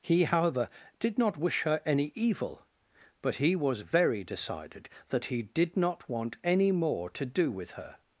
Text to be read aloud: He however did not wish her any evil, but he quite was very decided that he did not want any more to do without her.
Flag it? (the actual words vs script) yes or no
yes